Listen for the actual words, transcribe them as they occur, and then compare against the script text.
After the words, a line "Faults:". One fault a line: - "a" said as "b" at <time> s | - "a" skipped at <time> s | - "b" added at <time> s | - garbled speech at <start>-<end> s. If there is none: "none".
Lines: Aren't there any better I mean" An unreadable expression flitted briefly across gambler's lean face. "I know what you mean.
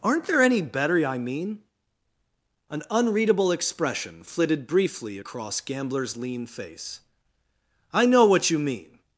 Aren't there any better I mean" An unreadable expression flitted briefly across gambler's lean face. "I know what you mean.
Faults:
none